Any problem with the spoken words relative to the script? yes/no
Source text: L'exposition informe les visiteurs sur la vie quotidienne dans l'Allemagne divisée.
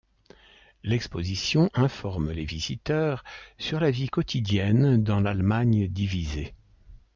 no